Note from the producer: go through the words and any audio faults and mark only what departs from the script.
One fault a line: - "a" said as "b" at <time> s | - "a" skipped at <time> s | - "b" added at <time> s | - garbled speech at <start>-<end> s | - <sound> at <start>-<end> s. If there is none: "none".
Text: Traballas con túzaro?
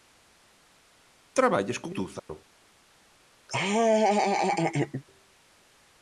- dropout at 2.2-2.3 s
- laugh at 3.5-5.0 s